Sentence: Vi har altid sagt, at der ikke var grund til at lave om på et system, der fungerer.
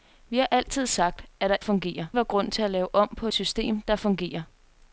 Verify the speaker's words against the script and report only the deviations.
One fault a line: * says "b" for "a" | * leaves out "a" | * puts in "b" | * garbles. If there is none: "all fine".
* says "fungerer" for "ikke"
* leaves out "et"